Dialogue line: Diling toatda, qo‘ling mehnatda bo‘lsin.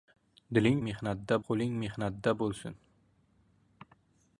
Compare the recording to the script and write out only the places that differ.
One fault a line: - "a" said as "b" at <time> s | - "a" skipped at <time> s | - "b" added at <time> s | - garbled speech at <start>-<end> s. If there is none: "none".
- "toatda" said as "mehnatda" at 0.9 s